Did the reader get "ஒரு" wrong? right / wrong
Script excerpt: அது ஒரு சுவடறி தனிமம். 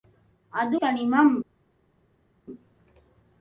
wrong